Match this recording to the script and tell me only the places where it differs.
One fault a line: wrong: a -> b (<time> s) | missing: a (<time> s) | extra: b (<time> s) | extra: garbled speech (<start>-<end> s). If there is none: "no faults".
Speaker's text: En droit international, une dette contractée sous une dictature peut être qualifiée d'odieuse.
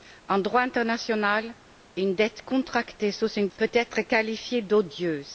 missing: dictature (3.5 s)